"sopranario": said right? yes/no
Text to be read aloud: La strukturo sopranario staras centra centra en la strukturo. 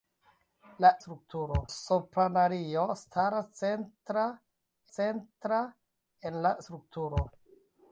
yes